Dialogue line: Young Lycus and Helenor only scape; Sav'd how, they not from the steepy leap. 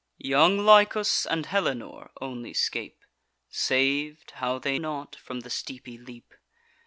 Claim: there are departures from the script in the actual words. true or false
false